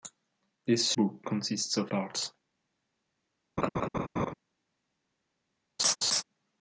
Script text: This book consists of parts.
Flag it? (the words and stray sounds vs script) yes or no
yes